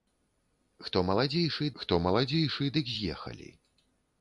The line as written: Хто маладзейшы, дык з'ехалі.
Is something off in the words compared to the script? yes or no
yes